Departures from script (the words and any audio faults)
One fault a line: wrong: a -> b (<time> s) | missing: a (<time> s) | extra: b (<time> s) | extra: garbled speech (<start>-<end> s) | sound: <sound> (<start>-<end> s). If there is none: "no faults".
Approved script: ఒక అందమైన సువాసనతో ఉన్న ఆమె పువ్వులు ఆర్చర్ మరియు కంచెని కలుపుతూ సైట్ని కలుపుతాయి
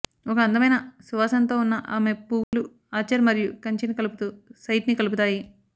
sound: dropout (2.4-2.5 s)